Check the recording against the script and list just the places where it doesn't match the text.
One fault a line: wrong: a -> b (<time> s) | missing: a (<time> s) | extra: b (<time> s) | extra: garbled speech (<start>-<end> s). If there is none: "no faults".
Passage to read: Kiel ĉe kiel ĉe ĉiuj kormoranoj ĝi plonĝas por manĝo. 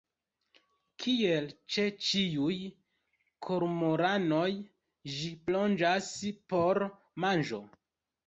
missing: kiel ĉe (1.8 s)